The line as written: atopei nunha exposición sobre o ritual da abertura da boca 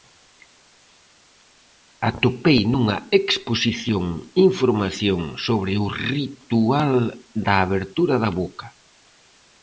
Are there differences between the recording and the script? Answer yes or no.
yes